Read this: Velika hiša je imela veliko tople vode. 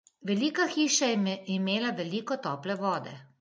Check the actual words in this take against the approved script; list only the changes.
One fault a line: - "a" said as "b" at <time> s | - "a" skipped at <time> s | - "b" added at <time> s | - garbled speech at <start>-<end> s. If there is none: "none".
none